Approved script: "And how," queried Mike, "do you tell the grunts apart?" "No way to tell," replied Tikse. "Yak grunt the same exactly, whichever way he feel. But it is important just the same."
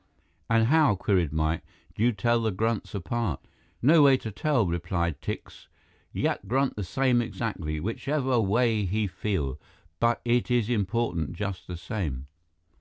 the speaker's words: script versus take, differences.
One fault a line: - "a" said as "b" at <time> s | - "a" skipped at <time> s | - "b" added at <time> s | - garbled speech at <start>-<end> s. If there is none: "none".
none